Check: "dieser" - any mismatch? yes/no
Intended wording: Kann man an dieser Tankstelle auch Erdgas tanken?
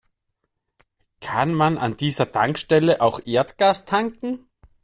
no